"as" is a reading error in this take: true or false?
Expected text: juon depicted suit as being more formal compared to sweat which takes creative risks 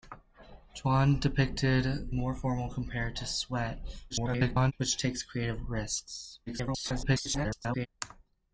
true